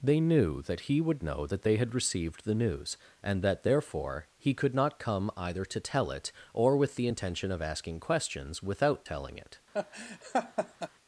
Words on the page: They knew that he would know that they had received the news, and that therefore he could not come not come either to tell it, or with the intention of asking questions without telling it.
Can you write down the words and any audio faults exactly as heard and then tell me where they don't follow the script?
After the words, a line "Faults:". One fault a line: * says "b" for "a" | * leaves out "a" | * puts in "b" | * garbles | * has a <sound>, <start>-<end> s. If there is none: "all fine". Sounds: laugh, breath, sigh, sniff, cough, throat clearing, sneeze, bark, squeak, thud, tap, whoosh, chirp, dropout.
They knew that he would know that they had received the news, and that therefore he could not come either to tell it, or with the intention of asking questions without telling it.
Faults:
* leaves out "not come"
* has a laugh, 9.7-10.9 s